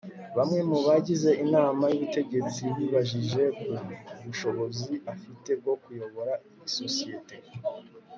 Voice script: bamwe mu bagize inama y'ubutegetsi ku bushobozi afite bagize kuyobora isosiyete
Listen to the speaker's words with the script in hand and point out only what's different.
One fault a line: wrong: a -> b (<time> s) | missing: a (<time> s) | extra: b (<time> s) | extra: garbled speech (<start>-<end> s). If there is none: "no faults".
extra: bibajije (2.8 s)
wrong: bagize -> bwo (5.6 s)